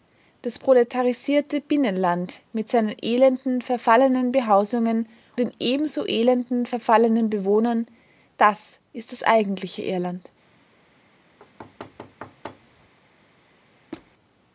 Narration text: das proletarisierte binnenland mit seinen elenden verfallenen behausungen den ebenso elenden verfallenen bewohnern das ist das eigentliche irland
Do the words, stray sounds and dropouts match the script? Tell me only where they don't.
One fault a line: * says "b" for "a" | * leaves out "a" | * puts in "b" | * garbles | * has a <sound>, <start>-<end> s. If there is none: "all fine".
* has a thud, 11.4-12.9 s
* has a squeak, 13.9-14.1 s